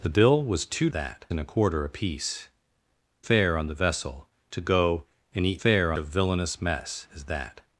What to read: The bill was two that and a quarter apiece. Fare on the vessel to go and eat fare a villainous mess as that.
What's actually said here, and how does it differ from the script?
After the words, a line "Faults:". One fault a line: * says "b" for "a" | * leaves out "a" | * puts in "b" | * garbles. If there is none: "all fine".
The bill was two that and a quarter apiece. Fare on the vessel to go and eat fare a villainous mess as that.
Faults:
all fine